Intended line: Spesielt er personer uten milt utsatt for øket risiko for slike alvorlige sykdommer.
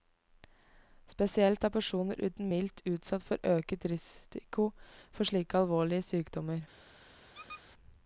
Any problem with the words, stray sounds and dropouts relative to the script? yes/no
yes